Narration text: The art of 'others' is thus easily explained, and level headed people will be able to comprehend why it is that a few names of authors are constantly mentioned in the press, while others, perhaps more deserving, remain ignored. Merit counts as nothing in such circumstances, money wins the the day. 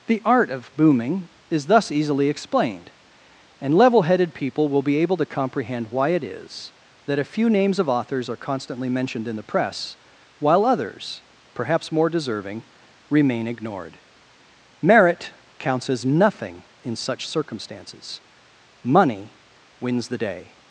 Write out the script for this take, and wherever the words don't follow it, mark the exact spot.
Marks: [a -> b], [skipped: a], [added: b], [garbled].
The art of ['others' -> booming] is thus easily explained, and level headed people will be able to comprehend why it is that a few names of authors are constantly mentioned in the press, while others, perhaps more deserving, remain ignored. Merit counts as nothing in such circumstances, money wins the [skipped: the] day.